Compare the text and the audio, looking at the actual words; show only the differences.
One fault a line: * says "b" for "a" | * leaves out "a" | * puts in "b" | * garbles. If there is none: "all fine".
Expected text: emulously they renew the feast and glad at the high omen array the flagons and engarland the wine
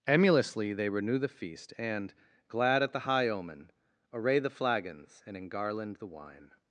all fine